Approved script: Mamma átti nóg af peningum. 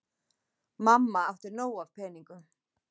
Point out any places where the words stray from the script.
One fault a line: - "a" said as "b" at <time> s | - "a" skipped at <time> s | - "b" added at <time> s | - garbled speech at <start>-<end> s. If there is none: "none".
none